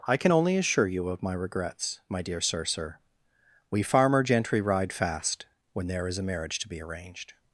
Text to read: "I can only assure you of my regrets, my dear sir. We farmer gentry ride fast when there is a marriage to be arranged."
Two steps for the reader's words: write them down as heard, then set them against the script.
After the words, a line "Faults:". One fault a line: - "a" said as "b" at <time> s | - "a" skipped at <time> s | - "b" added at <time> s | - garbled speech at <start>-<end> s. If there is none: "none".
"I can only assure you of my regrets, my dear sir sir. We farmer gentry ride fast when there is a marriage to be arranged."
Faults:
- "sir" added at 2.6 s